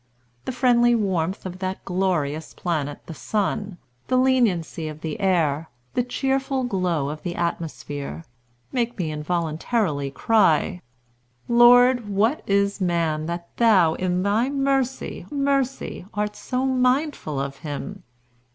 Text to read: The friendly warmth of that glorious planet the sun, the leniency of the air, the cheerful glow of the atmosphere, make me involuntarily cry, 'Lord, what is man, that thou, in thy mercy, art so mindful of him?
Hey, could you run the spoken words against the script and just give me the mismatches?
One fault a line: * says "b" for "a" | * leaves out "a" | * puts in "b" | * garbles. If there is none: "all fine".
* puts in "mercy"